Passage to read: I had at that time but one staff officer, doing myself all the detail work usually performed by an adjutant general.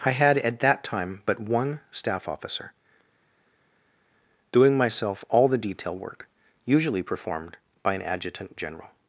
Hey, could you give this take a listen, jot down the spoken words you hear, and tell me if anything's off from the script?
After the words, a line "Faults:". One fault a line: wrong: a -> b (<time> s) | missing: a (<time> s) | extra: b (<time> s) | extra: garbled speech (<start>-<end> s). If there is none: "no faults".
I had at that time but one staff officer, doing myself all the detail work usually performed by an adjutant general.
Faults:
no faults